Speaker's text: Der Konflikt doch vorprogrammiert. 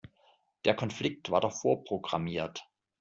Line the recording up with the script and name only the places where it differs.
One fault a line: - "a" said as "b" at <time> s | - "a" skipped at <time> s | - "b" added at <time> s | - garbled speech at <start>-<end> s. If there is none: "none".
- "war" added at 1.3 s